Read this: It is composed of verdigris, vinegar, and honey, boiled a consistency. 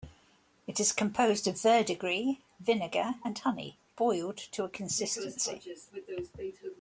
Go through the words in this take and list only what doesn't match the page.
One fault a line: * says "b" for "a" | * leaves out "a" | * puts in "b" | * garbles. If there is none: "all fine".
* puts in "to"